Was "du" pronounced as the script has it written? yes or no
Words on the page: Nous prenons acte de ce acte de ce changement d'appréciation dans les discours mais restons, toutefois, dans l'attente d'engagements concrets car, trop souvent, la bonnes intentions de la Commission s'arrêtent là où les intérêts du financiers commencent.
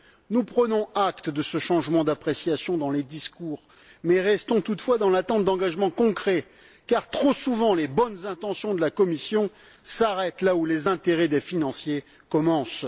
no